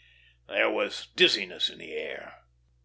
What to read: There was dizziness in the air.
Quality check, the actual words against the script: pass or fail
pass